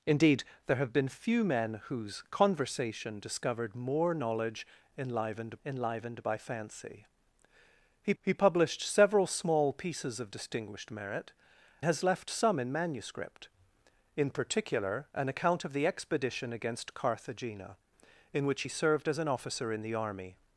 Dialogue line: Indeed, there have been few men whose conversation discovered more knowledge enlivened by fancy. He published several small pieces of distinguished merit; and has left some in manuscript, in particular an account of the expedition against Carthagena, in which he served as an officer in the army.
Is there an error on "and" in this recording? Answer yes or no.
yes